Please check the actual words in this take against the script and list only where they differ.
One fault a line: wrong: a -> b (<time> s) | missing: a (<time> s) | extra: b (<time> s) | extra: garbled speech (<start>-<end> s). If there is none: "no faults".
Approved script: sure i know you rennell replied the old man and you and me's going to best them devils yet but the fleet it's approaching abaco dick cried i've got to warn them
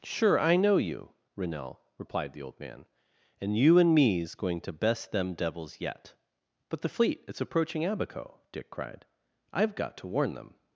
no faults